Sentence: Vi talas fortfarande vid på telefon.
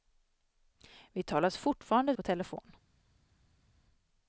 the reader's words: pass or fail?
fail